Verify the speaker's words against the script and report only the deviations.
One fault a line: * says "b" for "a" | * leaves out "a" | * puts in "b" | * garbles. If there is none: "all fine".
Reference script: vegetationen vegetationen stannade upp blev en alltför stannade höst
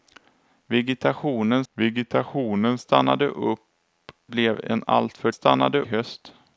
all fine